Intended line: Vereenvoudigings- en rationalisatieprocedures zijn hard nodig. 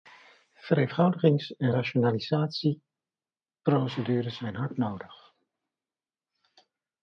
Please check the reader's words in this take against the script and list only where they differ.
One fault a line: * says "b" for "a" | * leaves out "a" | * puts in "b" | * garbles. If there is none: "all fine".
all fine